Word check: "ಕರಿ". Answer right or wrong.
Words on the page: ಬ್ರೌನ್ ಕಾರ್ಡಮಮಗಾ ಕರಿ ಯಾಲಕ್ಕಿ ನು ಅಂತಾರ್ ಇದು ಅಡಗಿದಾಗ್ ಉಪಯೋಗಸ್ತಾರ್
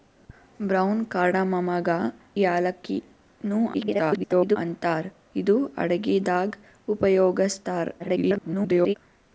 wrong